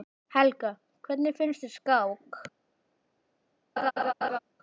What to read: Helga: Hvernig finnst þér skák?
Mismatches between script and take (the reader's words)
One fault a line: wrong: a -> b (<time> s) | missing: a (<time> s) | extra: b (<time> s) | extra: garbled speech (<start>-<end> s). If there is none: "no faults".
no faults